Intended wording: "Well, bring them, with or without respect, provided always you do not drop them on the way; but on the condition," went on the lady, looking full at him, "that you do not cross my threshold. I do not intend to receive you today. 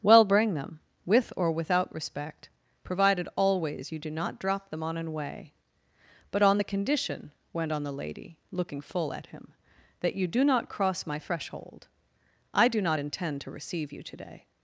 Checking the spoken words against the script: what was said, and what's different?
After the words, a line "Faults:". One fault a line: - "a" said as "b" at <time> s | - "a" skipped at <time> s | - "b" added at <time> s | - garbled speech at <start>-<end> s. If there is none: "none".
"Well, bring them, with or without respect, provided always you do not drop them on an way; but on the condition," went on the lady, looking full at him, "that you do not cross my threshold. I do not intend to receive you today.
Faults:
- "the" said as "an" at 5.0 s